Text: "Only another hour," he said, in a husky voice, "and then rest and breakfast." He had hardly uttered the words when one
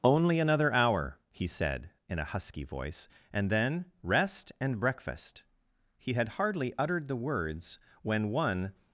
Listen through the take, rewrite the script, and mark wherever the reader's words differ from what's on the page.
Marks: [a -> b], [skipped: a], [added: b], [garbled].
"Only another hour," he said, in a husky voice, "and then rest and breakfast." He had hardly uttered the words when one